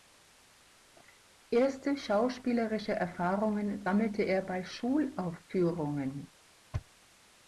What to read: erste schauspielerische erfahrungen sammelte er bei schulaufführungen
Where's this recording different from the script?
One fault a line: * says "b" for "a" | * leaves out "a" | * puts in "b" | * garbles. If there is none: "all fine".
all fine